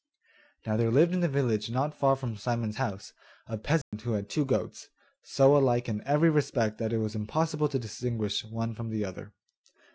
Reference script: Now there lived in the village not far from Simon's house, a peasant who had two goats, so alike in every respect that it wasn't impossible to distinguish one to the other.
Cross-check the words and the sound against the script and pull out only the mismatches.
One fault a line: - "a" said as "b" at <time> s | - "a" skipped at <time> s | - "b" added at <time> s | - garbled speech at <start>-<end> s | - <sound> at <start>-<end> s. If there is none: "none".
- dropout at 3.8-3.9 s
- "wasn't" said as "was" at 7.0 s
- "to" said as "from" at 8.7 s